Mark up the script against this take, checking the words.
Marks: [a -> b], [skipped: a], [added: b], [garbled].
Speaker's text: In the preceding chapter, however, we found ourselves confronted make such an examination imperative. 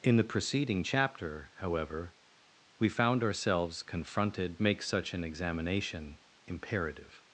In the preceding chapter, however, we found ourselves confronted make such an examination imperative.